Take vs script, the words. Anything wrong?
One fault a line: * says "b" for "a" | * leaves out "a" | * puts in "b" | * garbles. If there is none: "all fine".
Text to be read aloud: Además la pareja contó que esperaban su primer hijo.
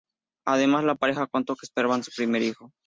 all fine